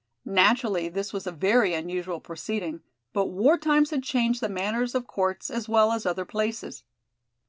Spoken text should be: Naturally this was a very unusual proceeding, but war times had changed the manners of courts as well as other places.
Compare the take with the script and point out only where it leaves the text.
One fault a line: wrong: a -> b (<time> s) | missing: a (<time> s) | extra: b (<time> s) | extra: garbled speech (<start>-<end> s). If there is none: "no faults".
no faults